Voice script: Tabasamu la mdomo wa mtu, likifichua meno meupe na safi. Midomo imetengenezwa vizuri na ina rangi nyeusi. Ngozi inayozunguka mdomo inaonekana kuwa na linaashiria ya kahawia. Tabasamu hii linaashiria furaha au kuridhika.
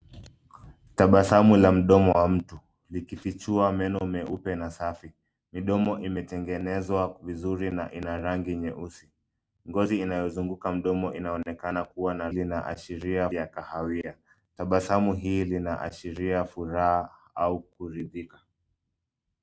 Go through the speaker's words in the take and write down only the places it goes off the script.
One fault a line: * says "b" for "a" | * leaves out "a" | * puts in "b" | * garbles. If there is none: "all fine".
all fine